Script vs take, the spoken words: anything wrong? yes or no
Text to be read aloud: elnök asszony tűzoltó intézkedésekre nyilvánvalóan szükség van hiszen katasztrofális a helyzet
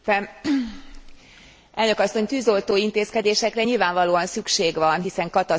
no